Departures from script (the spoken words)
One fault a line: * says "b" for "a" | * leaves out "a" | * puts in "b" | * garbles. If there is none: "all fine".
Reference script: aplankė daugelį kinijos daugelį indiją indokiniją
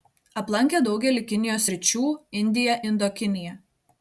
* says "sričių" for "daugelį"